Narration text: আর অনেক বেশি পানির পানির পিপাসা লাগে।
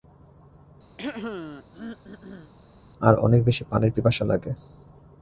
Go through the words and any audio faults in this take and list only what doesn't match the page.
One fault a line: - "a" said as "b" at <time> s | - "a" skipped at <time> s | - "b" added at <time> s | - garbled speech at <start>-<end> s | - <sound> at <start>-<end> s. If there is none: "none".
- throat clearing at 1.0-2.5 s
- "পানির" skipped at 3.9 s